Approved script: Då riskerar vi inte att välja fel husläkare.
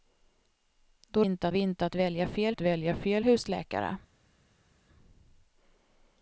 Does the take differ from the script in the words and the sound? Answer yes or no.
yes